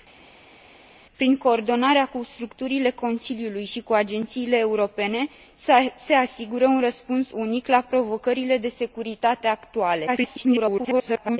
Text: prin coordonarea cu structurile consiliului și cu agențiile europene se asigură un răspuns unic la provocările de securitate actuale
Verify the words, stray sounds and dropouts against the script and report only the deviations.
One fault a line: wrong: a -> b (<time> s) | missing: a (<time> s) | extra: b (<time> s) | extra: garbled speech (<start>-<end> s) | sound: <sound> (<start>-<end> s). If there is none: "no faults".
extra: garbled speech (10.1-11.4 s)